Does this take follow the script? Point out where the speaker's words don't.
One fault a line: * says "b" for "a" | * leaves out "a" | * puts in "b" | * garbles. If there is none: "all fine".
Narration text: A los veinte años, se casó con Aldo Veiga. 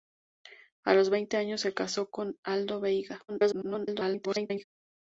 * garbles